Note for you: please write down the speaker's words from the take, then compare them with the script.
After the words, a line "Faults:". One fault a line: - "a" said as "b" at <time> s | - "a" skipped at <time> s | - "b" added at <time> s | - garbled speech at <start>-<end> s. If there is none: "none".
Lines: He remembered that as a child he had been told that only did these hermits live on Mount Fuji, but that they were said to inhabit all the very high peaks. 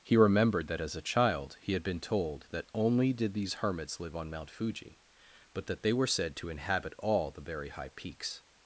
He remembered that as a child he had been told that only did these hermits live on Mount Fuji, but that they were said to inhabit all the very high peaks.
Faults:
none